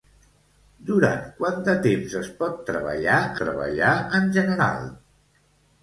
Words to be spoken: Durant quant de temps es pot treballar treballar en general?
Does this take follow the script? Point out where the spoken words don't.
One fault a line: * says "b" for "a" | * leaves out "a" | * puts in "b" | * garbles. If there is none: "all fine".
all fine